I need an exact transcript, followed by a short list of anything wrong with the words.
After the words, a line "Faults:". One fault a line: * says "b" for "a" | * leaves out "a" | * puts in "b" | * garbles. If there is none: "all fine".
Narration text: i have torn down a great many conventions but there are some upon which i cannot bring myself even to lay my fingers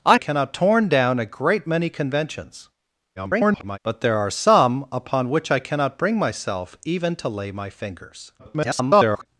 i cannot torn down a great many conventions [garbled] but there are some upon which i cannot bring myself even to lay my fingers [garbled]
Faults:
* says "cannot" for "have"
* garbles
* garbles